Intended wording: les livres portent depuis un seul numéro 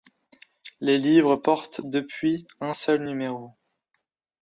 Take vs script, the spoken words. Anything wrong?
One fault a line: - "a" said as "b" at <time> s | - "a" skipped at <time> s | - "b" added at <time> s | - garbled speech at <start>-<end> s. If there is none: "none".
none